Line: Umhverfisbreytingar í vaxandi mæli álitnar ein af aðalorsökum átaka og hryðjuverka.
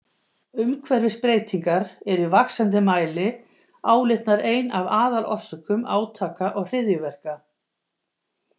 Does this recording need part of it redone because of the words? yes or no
yes